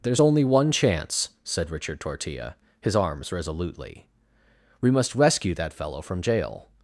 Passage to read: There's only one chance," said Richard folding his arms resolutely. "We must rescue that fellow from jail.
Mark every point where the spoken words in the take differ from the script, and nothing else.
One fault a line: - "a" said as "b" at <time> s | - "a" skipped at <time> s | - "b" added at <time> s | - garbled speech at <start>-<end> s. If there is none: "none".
- "folding" said as "tortilla" at 2.0 s